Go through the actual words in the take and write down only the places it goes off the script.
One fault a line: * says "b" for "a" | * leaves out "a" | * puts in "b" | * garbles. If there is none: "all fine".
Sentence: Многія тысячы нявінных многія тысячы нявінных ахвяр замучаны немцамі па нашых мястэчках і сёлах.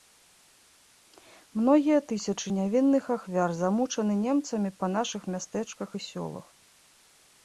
* leaves out "многія тысячы нявінных"